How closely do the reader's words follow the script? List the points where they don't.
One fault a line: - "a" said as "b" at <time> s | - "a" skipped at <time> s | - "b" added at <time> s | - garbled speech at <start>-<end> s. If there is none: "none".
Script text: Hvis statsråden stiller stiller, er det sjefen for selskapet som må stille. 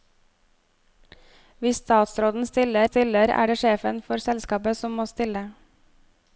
none